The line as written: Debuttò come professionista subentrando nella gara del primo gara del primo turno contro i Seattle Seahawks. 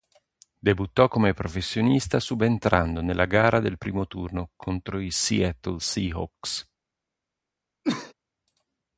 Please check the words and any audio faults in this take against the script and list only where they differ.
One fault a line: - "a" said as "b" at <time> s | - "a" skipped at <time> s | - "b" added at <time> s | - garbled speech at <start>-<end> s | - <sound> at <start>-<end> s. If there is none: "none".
- "gara del primo" skipped at 4.1 s
- cough at 7.8-8.1 s